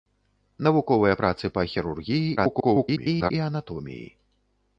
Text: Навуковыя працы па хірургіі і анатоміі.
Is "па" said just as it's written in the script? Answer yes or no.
yes